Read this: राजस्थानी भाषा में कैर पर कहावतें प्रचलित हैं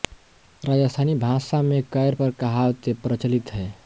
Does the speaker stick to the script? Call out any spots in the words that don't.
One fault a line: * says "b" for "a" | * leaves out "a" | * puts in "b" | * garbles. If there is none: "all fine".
all fine